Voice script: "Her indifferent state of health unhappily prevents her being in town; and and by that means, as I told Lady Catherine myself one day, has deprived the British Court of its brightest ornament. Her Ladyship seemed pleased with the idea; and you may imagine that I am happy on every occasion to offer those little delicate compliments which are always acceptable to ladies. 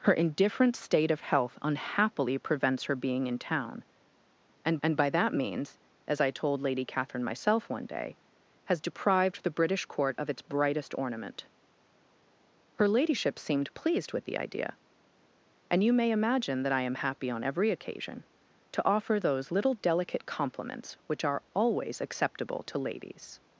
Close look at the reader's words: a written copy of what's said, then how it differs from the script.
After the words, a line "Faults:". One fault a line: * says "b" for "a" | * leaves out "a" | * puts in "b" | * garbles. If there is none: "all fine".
"Her indifferent state of health unhappily prevents her being in town; and and by that means, as I told Lady Catherine myself one day, has deprived the British Court of its brightest ornament. Her Ladyship seemed pleased with the idea; and you may imagine that I am happy on every occasion to offer those little delicate compliments which are always acceptable to ladies.
Faults:
all fine